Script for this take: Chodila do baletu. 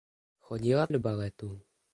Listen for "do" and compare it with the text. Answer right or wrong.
right